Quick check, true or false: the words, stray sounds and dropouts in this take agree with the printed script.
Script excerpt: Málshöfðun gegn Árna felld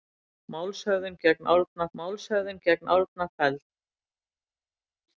false